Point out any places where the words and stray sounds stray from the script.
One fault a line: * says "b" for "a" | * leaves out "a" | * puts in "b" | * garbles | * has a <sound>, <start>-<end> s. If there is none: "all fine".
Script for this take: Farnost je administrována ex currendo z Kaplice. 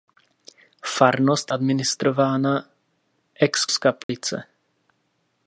* leaves out "je"
* leaves out "currendo"
* has a dropout, 4.0-4.1 s